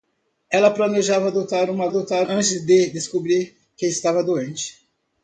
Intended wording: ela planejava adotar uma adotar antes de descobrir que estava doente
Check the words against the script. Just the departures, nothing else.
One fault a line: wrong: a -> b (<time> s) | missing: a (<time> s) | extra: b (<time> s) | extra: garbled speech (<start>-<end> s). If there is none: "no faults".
no faults